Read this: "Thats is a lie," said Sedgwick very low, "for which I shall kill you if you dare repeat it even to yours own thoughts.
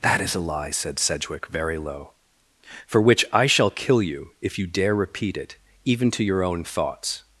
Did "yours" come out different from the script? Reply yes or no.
yes